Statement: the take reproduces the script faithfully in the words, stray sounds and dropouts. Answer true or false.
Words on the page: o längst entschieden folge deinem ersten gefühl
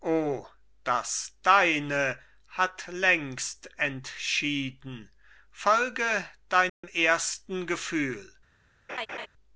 false